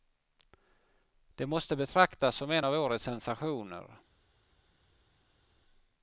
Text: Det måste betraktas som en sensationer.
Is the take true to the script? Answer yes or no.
no